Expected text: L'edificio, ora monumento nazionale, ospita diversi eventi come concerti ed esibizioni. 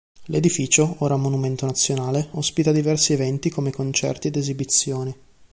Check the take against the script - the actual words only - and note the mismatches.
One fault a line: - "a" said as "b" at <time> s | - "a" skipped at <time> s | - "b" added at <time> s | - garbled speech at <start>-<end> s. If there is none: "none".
none